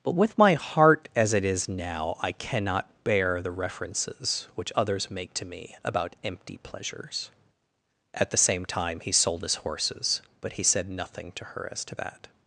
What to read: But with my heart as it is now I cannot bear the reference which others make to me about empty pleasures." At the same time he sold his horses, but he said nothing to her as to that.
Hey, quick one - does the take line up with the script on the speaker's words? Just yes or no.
no